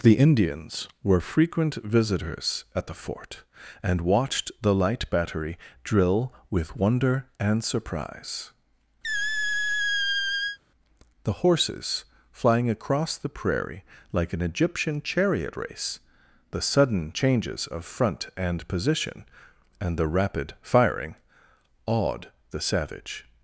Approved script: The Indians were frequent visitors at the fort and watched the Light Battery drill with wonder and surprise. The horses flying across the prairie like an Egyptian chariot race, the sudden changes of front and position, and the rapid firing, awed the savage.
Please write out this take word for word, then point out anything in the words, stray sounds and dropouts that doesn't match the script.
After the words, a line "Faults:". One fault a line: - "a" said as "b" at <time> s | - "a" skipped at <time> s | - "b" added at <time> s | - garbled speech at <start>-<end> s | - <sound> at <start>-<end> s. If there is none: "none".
The Indians were frequent visitors at the fort and watched the Light Battery drill with wonder and surprise. The horses flying across the prairie like an Egyptian chariot race, the sudden changes of front and position, and the rapid firing, awed the savage.
Faults:
- squeak at 9.0-10.6 s